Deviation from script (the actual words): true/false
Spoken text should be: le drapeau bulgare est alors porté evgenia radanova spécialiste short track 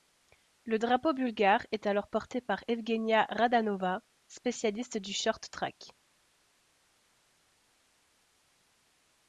true